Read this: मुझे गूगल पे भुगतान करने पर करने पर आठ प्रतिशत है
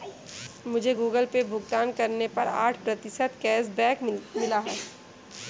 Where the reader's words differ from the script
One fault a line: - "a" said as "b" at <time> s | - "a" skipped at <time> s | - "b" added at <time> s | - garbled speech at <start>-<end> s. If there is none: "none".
- "करने पर आठ प्रतिशत" said as "आठ प्रतिशत कैशबैक मिला" at 2.6 s